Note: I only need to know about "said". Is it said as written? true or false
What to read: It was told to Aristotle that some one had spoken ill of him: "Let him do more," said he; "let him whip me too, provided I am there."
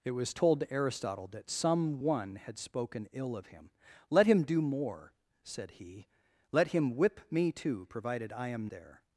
true